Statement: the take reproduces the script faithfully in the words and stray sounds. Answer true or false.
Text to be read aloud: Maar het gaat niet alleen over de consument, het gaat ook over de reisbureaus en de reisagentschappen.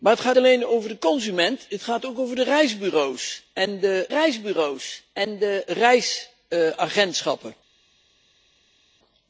false